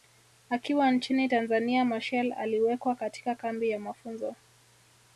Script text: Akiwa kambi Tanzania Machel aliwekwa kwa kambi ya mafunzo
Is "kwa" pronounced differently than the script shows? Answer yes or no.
yes